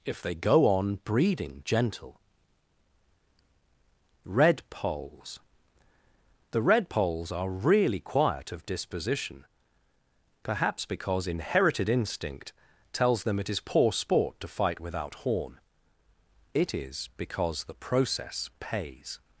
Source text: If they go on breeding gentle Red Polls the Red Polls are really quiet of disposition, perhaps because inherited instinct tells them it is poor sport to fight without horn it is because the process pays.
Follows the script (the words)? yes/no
yes